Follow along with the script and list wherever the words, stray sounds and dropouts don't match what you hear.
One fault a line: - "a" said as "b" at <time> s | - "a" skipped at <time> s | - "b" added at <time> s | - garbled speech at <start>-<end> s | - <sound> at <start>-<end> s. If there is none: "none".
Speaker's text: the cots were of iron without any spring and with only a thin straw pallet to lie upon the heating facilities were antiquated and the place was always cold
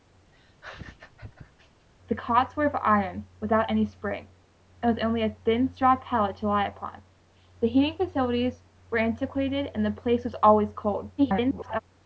- laugh at 0.3-1.9 s
- garbled speech at 11.2-11.8 s